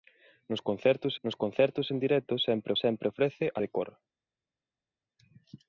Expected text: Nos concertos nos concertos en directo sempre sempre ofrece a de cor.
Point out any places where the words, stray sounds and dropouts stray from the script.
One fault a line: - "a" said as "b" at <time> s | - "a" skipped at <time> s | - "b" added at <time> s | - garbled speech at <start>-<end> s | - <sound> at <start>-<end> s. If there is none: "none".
none